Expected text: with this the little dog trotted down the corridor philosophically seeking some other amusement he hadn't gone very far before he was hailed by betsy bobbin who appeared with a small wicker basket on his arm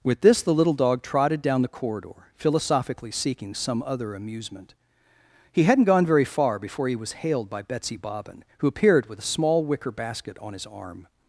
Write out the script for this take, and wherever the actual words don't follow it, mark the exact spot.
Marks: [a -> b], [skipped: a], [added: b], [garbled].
with this the little dog trotted down the corridor philosophically seeking some other amusement he hadn't gone very far before he was hailed by betsy bobbin who appeared with a small wicker basket on his arm